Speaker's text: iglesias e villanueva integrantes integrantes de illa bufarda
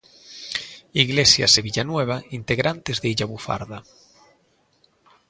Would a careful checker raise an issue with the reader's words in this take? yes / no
yes